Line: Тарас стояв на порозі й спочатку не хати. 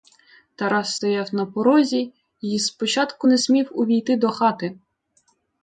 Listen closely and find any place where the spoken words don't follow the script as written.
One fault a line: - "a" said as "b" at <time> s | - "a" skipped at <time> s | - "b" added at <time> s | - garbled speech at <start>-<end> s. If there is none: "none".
- "смів увійти до" added at 3.3 s